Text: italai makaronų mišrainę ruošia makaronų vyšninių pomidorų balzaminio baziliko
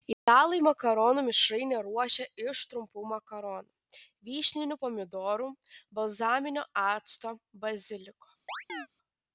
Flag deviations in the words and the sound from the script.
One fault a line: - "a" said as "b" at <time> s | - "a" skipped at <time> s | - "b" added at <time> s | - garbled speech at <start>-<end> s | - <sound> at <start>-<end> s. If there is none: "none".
- dropout at 0.1-0.3 s
- "iš trumpų" added at 2.5 s
- "acto" added at 6.8 s
- chirp at 8.5-8.9 s